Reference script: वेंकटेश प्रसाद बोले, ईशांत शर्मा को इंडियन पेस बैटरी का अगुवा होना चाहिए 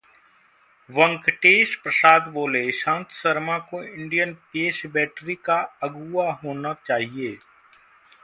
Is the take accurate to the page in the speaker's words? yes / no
yes